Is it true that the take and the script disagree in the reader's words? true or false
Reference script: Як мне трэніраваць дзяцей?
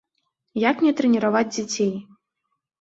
false